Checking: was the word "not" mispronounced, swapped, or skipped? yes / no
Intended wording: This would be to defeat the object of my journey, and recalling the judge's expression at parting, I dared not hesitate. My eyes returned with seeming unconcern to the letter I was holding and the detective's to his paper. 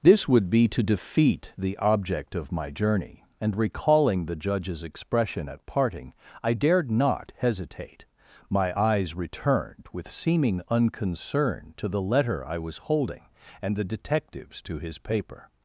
no